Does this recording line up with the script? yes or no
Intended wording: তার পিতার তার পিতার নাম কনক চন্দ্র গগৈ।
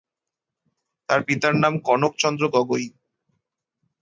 no